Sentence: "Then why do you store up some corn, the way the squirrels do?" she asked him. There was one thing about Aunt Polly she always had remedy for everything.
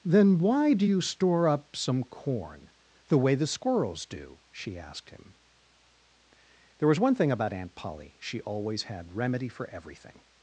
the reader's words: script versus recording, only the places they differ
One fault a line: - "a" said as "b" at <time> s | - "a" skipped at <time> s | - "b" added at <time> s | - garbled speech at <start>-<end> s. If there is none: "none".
none